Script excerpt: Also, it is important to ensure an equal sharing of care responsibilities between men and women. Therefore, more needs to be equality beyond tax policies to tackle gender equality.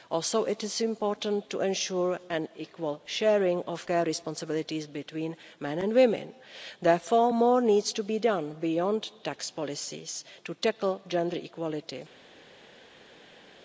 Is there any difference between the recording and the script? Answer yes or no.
yes